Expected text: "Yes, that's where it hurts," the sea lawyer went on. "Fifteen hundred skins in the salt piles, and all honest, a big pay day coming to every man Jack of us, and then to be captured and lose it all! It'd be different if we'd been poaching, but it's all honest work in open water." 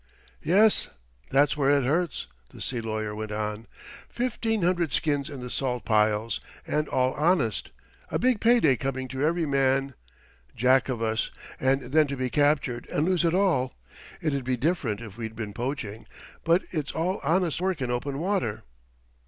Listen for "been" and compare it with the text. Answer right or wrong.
right